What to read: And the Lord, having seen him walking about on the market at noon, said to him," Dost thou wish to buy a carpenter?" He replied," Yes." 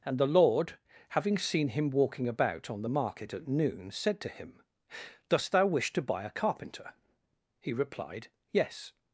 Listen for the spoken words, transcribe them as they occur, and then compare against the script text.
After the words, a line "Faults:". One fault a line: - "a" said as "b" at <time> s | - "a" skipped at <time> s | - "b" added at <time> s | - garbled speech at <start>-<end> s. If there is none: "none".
And the Lord, having seen him walking about on the market at noon, said to him," Dost thou wish to buy a carpenter?" He replied," Yes."
Faults:
none